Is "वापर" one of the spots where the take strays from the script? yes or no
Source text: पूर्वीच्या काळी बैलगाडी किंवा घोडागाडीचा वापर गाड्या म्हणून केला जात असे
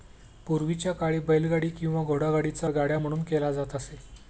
yes